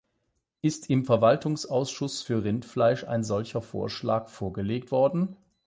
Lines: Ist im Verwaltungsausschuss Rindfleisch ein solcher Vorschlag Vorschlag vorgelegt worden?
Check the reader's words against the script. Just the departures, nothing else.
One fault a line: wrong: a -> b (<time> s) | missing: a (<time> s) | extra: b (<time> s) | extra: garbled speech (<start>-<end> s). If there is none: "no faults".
extra: für (2.2 s)
missing: Vorschlag (4.3 s)